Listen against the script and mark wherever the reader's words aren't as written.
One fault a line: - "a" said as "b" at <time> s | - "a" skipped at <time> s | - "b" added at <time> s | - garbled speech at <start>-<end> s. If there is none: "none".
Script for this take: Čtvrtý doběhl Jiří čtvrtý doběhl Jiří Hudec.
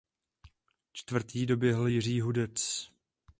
- "čtvrtý doběhl Jiří" skipped at 2.2 s